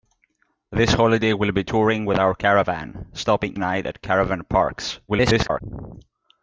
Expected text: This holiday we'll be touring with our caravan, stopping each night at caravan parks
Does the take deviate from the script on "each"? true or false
true